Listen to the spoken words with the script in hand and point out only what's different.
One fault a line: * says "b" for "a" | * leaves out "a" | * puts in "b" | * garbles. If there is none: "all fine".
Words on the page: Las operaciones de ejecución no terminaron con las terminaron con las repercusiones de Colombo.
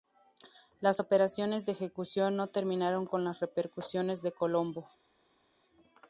* leaves out "terminaron con las"